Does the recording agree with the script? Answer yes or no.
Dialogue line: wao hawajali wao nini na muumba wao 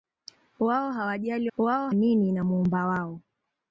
yes